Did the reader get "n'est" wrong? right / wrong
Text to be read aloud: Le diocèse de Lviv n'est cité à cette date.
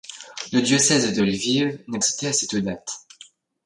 right